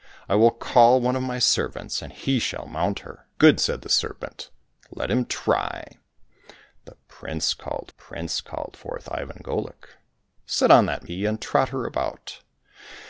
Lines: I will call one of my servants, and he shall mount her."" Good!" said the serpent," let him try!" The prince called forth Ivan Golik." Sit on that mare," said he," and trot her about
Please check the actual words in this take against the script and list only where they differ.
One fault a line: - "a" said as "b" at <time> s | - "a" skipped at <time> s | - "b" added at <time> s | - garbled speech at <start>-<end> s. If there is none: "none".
- "prince called" added at 8.0 s
- "mare said" skipped at 11.1 s